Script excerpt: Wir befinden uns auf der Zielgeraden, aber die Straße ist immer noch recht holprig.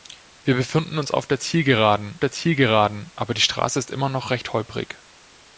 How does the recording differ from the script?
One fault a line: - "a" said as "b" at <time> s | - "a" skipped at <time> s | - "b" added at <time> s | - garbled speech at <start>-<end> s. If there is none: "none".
- "der Zielgeraden" added at 2.2 s